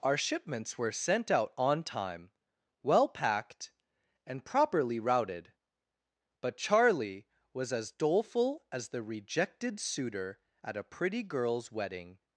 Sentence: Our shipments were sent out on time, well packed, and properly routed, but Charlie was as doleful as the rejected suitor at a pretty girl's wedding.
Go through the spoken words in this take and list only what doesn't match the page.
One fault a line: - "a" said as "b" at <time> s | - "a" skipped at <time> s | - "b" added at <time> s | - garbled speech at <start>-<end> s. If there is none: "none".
none